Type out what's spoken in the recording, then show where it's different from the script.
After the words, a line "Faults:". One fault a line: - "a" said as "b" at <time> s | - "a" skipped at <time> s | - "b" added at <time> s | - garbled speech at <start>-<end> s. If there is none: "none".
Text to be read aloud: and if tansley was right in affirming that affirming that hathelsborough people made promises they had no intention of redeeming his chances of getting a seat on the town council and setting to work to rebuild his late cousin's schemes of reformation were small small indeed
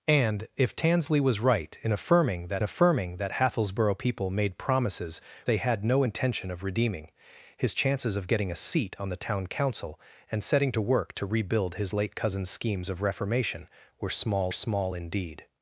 and if tansley was right in affirming that affirming that hathelsborough people made promises they had no intention of redeeming his chances of getting a seat on the town council and setting to work to rebuild his late cousin's schemes of reformation were small small indeed
Faults:
none